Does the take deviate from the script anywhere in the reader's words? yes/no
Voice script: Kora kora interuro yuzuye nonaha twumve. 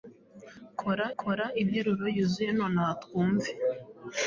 no